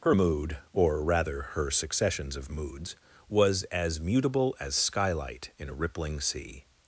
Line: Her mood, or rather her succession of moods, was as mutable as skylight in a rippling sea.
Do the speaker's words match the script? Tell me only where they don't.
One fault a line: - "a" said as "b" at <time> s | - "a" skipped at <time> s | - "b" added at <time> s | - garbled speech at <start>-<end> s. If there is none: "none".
- "succession" said as "successions" at 1.7 s